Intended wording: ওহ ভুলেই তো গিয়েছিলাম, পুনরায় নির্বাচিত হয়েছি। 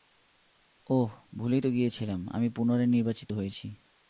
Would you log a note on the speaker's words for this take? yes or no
yes